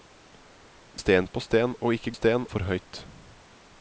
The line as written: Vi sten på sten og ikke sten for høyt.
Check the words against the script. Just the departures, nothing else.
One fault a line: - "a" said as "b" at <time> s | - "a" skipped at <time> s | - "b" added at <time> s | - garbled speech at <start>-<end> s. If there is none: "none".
none